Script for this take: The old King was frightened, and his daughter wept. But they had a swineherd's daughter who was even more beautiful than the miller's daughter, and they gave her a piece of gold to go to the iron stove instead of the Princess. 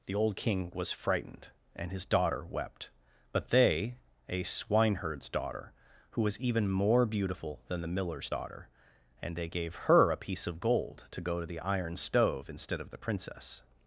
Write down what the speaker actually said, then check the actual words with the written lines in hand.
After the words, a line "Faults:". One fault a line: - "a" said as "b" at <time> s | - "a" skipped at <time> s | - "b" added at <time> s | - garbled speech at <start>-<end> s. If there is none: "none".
The old King was frightened, and his daughter wept. But they a swineherd's daughter who was even more beautiful than the miller's daughter, and they gave her a piece of gold to go to the iron stove instead of the Princess.
Faults:
- "had" skipped at 4.0 s